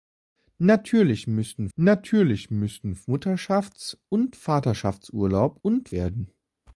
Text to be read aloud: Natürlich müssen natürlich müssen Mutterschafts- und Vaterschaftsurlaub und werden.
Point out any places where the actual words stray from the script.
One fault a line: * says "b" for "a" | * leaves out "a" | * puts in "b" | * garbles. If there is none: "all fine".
all fine